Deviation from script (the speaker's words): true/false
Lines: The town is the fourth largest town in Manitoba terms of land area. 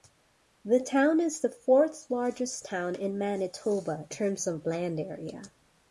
false